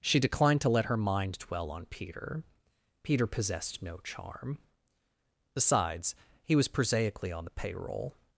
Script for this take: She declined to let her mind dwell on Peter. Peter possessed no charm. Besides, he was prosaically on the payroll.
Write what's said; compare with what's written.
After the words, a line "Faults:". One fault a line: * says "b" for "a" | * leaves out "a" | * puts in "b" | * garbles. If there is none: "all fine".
She declined to let her mind dwell on Peter. Peter possessed no charm. Besides, he was prosaically on the payroll.
Faults:
all fine